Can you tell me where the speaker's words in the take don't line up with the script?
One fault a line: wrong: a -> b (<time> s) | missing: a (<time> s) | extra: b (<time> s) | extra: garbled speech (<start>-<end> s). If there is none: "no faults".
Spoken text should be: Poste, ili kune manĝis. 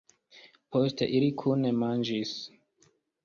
no faults